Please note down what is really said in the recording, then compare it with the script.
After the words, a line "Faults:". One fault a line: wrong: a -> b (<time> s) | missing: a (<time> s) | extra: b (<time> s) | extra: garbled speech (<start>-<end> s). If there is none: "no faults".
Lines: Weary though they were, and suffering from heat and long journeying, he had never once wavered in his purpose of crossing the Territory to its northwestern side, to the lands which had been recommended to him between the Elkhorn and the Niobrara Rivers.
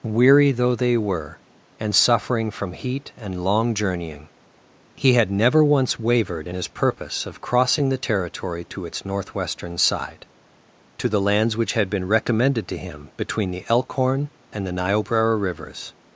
Weary though they were, and suffering from heat and long journeying, he had never once wavered in his purpose of crossing the Territory to its northwestern side, to the lands which had been recommended to him between the Elkhorn and the Niobrara Rivers.
Faults:
no faults